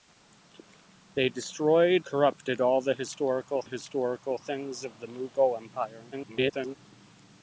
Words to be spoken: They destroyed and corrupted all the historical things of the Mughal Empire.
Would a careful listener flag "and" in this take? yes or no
yes